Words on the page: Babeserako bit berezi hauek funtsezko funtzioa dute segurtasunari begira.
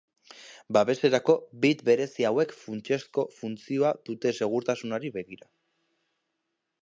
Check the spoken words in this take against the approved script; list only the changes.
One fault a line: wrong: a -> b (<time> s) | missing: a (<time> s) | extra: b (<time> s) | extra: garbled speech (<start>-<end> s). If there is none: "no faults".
no faults